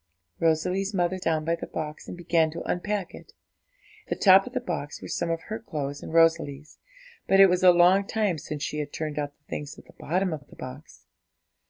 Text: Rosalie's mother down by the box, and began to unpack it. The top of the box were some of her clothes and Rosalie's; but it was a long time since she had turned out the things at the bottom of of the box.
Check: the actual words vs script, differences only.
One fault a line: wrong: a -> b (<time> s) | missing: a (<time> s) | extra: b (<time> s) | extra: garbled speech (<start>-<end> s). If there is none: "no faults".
no faults